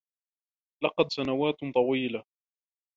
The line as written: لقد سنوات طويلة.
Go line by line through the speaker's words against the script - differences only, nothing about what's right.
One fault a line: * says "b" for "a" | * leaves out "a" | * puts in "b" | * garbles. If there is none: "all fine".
all fine